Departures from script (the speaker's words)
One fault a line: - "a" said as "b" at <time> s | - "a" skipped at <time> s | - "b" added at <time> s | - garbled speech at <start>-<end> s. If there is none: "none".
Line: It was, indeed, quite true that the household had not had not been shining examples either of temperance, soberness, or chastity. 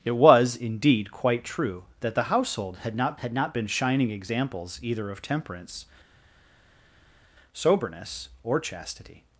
none